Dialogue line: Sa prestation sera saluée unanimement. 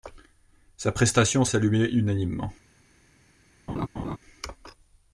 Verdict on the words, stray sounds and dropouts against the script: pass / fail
fail